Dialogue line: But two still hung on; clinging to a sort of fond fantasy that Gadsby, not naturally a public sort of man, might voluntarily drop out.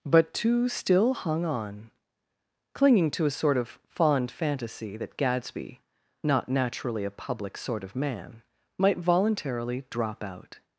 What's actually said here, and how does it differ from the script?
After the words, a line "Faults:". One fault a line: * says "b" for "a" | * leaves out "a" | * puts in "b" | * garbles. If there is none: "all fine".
But two still hung on; clinging to a sort of fond fantasy that Gadsby, not naturally a public sort of man, might voluntarily drop out.
Faults:
all fine